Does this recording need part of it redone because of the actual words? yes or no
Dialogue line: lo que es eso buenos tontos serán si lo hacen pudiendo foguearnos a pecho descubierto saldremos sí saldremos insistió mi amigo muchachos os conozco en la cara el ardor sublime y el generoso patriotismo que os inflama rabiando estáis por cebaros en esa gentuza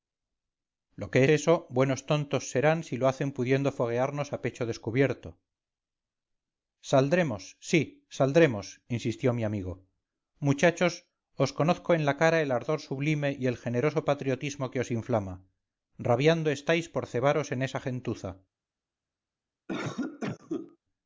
yes